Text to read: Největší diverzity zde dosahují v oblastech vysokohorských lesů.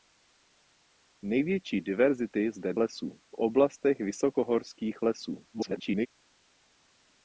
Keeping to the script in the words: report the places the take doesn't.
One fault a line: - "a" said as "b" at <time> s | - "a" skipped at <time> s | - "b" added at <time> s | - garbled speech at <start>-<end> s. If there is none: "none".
- "dosahují" said as "lesů" at 2.8 s
- garbled speech at 5.5-6.1 s